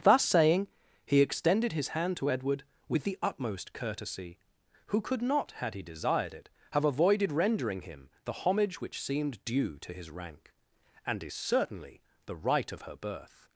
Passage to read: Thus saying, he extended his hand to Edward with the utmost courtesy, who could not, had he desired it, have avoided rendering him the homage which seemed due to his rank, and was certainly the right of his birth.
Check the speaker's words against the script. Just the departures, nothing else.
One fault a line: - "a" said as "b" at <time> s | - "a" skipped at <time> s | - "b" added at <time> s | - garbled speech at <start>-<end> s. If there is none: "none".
- "was" said as "is" at 11.2 s
- "his" said as "her" at 12.8 s